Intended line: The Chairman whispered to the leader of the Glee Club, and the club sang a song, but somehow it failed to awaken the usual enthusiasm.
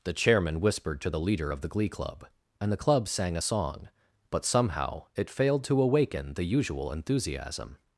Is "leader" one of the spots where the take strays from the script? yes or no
no